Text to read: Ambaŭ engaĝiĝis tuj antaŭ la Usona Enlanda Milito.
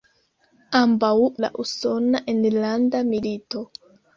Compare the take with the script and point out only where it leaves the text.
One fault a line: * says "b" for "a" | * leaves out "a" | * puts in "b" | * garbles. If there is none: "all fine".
* leaves out "engaĝiĝis tuj antaŭ"